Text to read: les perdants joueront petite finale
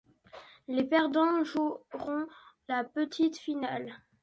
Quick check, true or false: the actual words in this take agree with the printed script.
false